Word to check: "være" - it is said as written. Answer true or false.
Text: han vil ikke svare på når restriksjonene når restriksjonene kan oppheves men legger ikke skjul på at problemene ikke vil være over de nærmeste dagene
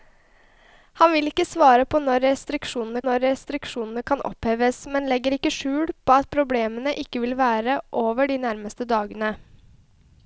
true